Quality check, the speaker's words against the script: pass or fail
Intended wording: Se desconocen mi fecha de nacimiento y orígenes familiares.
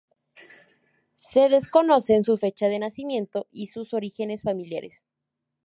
fail